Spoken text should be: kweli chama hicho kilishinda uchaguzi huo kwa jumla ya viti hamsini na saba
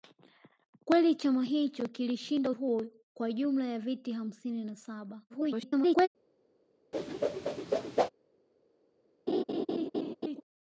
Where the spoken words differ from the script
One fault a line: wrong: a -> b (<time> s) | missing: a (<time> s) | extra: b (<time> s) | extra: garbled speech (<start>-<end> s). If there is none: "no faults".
missing: uchaguzi (2.5 s)
extra: garbled speech (5.3-6.1 s)